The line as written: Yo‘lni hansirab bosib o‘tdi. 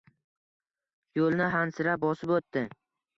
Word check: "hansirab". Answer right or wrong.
right